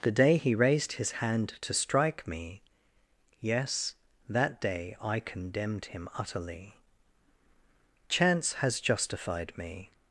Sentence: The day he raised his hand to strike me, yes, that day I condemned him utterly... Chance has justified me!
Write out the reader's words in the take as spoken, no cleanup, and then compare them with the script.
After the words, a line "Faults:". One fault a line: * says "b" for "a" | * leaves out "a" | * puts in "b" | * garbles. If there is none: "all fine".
The day he raised his hand to strike me, yes, that day I condemned him utterly... Chance has justified me!
Faults:
all fine